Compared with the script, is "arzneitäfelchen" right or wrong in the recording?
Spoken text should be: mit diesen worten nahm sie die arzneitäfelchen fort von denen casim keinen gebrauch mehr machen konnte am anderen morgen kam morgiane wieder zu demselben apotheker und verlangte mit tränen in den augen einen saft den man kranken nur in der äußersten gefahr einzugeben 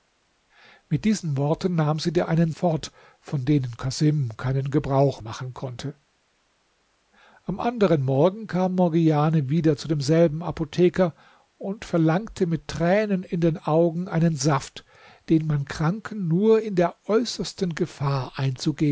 wrong